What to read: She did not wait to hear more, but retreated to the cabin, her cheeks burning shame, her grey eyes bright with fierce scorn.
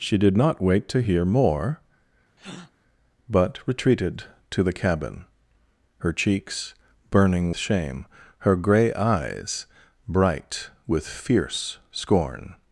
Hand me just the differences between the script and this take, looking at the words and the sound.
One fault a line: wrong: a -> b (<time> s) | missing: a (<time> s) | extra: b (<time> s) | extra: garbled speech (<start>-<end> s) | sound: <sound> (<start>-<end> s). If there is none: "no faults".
sound: breath (2.4-2.7 s)